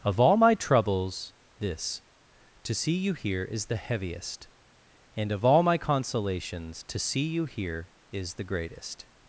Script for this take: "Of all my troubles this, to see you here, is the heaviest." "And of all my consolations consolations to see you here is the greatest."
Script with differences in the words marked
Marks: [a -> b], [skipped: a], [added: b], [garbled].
"Of all my troubles this, to see you here, is the heaviest." "And of all my consolations [skipped: consolations] to see you here is the greatest."